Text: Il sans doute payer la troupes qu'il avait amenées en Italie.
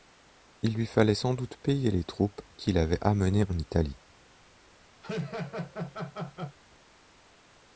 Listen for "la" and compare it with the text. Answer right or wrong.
wrong